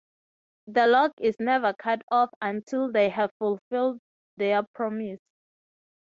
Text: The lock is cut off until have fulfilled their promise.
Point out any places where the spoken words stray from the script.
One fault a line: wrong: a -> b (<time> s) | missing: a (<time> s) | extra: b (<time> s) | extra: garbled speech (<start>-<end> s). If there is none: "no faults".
extra: never (1.4 s)
extra: they (2.9 s)